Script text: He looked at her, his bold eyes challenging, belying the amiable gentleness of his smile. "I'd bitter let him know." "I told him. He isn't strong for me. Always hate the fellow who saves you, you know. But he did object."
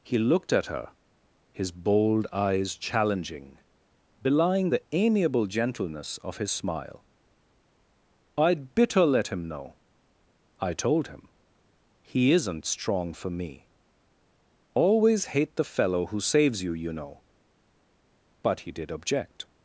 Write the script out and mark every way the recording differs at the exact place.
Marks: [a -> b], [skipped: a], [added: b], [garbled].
He looked at her, his bold eyes challenging, belying the amiable gentleness of his smile. "I'd bitter let him know." "I told him. He isn't strong for me. Always hate the fellow who saves you, you know. But he did object."